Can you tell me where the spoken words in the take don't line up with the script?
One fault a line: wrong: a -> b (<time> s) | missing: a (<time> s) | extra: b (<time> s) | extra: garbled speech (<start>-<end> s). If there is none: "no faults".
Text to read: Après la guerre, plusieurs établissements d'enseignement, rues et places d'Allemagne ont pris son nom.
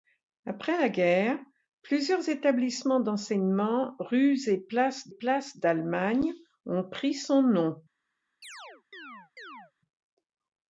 extra: places (5.1 s)